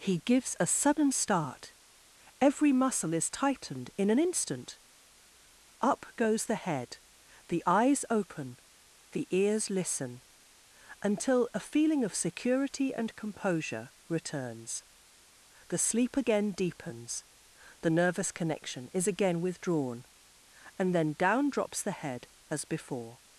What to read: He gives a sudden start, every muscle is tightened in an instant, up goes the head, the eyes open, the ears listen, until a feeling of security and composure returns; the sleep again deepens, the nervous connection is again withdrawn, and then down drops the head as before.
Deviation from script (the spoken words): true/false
false